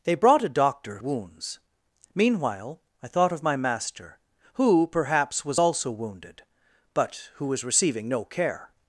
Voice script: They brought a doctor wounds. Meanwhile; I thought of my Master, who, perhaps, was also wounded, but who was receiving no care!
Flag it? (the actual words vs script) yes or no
no